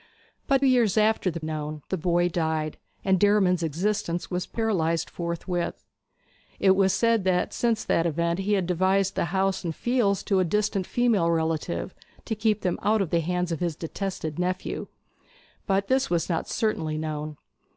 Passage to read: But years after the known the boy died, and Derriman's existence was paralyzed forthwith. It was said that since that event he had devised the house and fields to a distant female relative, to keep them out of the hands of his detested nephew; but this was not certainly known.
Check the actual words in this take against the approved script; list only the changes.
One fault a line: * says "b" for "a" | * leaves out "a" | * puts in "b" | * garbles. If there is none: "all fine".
all fine